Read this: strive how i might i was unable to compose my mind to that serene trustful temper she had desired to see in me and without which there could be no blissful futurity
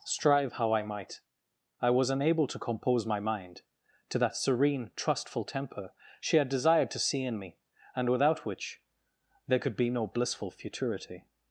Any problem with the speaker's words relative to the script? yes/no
no